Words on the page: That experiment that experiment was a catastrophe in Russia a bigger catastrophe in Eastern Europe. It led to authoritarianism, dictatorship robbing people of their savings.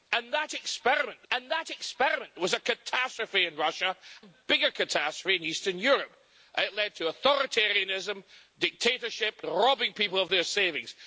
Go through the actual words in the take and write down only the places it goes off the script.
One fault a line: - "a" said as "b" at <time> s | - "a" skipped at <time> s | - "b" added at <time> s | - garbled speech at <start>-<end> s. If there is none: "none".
none